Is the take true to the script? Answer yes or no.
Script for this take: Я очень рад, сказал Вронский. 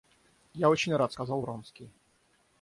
yes